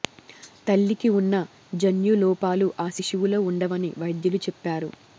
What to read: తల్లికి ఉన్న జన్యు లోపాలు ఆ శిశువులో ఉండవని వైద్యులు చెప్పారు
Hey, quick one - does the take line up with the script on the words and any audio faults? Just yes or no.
yes